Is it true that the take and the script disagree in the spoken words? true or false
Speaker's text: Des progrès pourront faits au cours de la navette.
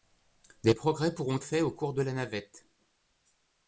false